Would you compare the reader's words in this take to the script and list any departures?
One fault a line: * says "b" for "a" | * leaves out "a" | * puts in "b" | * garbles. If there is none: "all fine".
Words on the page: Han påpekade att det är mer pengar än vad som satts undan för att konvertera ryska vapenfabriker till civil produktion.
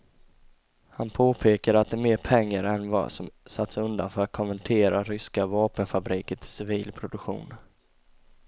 all fine